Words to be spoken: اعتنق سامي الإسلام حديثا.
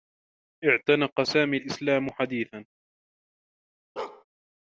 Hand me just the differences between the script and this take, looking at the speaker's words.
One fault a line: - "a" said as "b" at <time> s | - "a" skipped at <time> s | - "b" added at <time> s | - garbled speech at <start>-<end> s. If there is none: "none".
none